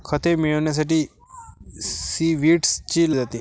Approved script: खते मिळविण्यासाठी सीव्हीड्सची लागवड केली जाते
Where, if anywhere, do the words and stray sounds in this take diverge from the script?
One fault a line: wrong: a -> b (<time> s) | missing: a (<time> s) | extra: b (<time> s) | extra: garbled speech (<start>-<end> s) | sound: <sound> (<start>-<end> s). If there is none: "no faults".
missing: लागवड केली (3.1 s)